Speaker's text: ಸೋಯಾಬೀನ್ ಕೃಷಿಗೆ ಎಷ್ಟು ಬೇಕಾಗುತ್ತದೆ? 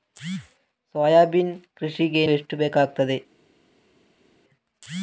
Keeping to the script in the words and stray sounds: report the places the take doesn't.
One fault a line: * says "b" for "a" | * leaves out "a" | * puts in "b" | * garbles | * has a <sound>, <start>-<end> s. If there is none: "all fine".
all fine